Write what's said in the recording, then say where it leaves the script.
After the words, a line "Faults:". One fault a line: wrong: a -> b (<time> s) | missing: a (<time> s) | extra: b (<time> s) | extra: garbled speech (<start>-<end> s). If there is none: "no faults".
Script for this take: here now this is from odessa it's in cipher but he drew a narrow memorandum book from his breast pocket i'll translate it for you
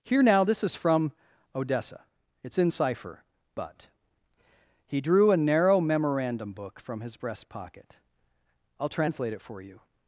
here now this is from odessa it's in cipher but he drew a narrow memorandum book from his breast pocket i'll translate it for you
Faults:
no faults